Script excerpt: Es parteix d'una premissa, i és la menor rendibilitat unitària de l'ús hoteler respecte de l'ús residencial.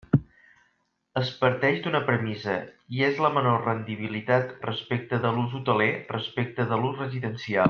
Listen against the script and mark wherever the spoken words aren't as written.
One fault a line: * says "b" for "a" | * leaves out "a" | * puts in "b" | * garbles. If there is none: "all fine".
* says "respecte" for "unitària"